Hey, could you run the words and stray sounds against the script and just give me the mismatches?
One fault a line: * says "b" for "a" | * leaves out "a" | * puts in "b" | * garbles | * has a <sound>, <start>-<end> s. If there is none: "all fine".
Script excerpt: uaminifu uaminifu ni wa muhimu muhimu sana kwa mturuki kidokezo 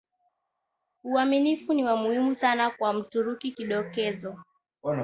* leaves out "uaminifu"
* leaves out "muhimu"